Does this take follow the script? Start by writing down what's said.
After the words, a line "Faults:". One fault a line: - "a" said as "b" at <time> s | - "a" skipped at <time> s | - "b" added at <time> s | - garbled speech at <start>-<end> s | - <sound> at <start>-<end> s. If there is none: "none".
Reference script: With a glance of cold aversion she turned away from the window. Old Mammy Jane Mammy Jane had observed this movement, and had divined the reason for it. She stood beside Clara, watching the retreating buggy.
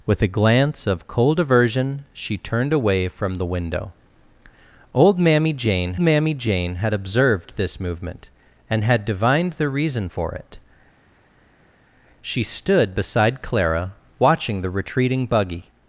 With a glance of cold aversion she turned away from the window. Old Mammy Jane Mammy Jane had observed this movement, and had divined the reason for it. She stood beside Clara, watching the retreating buggy.
Faults:
none